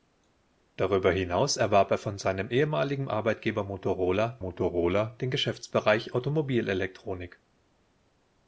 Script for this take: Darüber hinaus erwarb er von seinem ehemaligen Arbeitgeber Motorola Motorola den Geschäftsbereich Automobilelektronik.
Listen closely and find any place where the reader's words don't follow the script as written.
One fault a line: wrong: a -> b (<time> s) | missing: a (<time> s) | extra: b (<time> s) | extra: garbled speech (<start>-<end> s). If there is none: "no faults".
no faults